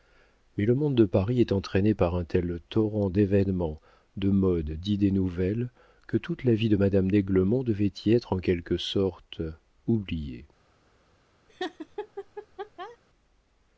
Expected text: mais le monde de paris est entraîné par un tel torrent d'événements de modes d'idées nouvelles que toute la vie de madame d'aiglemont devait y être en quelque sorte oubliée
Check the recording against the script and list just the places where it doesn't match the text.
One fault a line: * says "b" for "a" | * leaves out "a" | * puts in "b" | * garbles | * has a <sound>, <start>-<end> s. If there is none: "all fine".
* has a laugh, 11.5-13.0 s